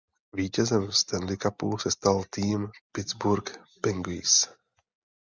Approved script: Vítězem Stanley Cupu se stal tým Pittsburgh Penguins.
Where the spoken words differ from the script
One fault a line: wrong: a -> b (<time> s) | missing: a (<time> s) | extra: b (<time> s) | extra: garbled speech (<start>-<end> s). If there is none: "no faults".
no faults